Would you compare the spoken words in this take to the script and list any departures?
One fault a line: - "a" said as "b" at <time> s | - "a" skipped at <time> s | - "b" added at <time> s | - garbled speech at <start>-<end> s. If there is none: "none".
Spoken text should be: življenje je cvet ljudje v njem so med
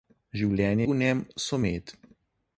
- "je cvet ljudje" skipped at 0.9 s